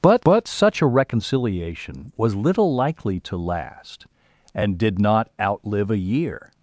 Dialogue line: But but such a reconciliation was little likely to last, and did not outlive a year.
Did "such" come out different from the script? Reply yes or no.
no